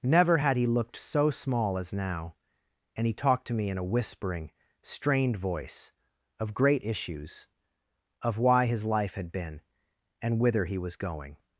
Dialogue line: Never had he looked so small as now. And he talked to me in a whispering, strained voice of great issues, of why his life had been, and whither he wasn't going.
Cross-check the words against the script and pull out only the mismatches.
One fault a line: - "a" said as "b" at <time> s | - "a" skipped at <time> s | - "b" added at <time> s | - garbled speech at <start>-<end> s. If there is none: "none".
- "wasn't" said as "was" at 10.8 s